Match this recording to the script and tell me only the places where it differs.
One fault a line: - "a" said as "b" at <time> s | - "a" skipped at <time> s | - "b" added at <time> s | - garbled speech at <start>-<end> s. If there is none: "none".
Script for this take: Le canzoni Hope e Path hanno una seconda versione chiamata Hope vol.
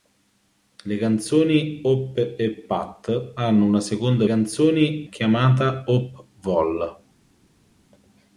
- "versione" said as "canzoni" at 4.2 s